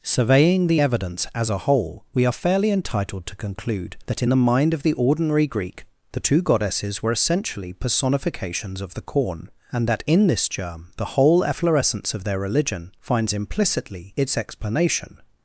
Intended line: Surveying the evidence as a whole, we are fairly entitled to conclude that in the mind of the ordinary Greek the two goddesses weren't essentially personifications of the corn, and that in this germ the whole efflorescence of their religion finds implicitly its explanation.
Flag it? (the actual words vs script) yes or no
yes